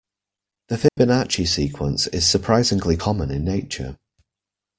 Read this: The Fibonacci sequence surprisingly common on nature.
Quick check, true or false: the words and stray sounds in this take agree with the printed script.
false